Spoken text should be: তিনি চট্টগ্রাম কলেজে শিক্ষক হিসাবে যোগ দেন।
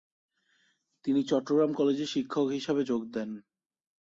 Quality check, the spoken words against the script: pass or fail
pass